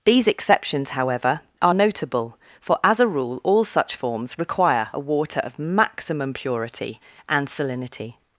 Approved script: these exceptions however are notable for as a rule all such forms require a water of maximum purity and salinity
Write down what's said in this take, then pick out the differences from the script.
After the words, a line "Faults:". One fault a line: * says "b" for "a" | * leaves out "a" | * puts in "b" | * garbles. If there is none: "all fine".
these exceptions however are notable for as a rule all such forms require a water of maximum purity and salinity
Faults:
all fine